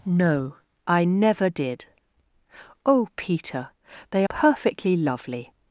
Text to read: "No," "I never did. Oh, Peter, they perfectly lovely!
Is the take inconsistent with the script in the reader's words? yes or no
no